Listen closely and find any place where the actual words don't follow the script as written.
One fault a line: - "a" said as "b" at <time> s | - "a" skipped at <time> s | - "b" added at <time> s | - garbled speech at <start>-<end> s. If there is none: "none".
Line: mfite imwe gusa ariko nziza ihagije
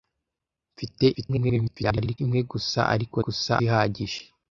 - garbled speech at 1.1-2.2 s
- "nziza" said as "gusa" at 3.2 s